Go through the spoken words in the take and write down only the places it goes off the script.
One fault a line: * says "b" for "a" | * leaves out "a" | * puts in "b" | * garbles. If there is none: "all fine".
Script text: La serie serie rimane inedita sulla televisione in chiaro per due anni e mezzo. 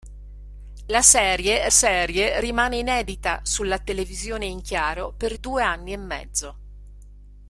all fine